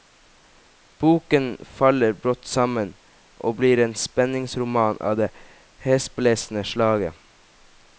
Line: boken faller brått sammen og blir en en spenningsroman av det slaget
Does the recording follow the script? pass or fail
fail